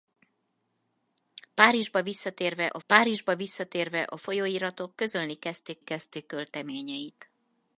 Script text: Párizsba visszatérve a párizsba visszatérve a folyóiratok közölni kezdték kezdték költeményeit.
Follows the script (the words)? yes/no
yes